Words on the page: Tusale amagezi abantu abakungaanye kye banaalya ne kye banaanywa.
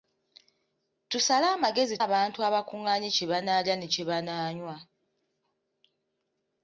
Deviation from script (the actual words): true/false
false